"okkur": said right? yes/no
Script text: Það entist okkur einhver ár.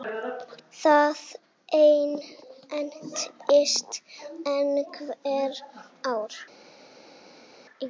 no